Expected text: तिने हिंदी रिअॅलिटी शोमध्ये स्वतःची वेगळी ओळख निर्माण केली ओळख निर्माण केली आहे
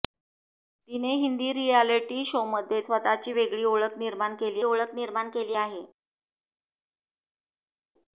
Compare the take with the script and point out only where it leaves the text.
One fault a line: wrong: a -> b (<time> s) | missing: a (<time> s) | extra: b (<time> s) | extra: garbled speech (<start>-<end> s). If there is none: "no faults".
no faults